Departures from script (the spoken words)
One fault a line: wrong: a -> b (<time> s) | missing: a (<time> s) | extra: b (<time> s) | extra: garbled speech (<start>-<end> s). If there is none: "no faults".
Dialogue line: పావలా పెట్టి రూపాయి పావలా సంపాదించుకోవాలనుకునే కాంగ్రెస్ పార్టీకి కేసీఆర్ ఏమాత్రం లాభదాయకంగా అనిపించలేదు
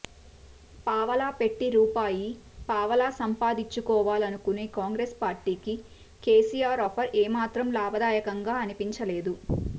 extra: ఆఫర్ (6.8 s)